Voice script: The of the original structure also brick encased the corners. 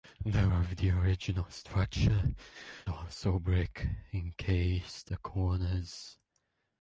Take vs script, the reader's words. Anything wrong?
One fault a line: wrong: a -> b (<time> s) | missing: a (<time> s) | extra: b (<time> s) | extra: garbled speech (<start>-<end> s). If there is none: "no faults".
no faults